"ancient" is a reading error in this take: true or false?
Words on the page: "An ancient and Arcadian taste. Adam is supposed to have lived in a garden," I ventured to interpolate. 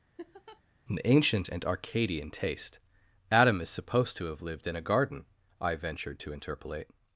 false